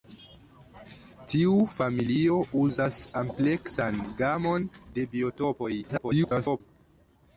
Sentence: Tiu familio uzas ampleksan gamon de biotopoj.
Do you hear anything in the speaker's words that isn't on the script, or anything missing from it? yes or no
yes